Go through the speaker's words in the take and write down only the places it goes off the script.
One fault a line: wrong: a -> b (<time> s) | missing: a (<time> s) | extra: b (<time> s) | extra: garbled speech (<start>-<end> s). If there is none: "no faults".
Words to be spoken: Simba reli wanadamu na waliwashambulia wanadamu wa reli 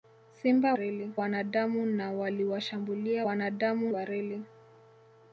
no faults